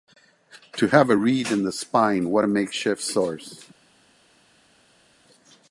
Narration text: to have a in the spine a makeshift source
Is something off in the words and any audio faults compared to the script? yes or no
yes